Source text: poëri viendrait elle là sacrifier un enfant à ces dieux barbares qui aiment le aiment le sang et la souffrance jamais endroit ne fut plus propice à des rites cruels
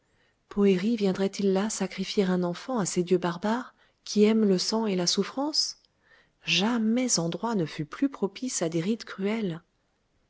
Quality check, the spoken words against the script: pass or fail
fail